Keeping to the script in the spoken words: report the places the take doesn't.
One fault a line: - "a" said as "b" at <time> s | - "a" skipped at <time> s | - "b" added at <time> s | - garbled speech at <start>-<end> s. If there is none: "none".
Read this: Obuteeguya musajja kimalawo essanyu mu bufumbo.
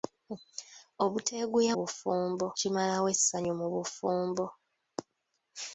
- "musajja" said as "bufumbo" at 1.8 s